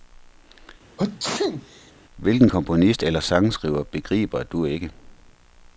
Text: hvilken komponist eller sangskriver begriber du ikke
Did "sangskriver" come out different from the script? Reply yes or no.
no